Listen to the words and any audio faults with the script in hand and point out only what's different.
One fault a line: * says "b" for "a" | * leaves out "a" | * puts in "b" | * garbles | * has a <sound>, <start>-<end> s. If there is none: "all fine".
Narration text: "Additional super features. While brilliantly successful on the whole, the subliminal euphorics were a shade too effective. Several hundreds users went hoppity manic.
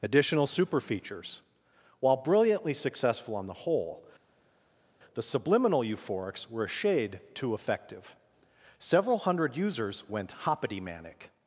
* says "hundred" for "hundreds"